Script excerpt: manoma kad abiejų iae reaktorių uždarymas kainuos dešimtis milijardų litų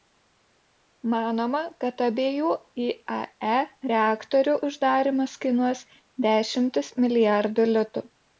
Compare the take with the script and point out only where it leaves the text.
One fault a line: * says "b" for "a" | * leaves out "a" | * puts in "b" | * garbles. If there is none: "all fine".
all fine